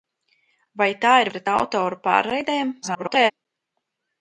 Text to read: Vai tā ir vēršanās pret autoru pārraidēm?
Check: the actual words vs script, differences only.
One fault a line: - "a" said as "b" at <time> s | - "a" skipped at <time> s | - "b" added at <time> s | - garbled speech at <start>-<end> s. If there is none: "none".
- "vēršanās" skipped at 1.3 s
- garbled speech at 2.8-3.3 s